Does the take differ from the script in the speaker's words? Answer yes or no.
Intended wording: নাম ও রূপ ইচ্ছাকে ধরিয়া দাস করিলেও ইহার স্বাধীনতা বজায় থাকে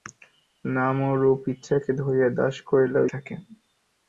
yes